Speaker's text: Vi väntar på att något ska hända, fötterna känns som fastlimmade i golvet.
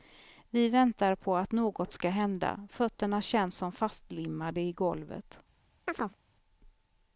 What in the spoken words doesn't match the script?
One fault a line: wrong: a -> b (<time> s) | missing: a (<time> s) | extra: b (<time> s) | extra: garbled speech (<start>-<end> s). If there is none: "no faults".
no faults